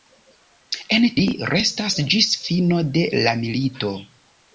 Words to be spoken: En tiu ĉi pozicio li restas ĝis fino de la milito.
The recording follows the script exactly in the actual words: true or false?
false